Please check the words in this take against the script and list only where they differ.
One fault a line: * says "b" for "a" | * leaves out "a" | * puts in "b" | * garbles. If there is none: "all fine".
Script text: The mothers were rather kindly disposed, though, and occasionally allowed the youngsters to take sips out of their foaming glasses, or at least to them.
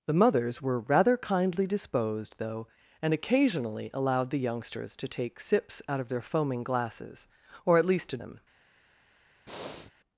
all fine